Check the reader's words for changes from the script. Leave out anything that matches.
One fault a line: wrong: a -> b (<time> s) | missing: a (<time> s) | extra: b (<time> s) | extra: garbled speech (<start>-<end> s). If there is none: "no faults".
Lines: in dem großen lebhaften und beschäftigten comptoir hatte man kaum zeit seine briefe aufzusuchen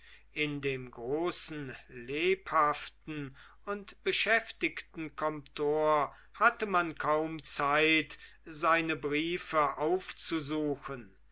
no faults